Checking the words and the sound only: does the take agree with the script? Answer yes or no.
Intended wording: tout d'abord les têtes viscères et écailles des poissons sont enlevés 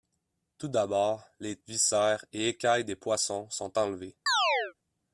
no